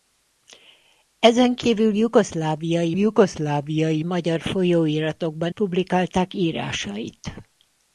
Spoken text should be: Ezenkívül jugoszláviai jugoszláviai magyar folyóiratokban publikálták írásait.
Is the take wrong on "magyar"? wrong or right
right